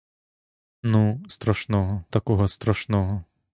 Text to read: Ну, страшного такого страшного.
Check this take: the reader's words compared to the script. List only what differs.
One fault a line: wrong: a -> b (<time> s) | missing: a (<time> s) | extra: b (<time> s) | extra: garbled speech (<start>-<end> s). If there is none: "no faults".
no faults